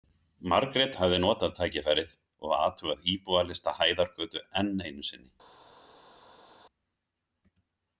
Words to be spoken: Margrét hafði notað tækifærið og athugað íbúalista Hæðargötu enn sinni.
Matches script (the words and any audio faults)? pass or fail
fail